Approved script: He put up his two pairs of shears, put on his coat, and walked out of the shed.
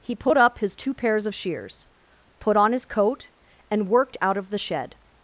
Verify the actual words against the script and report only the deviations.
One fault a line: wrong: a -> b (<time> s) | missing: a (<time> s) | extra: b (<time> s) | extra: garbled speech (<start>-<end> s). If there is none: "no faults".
wrong: walked -> worked (3.9 s)